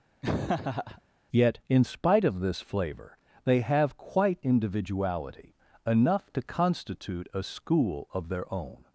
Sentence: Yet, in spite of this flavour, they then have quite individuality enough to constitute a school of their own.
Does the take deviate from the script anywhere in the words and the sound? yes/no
yes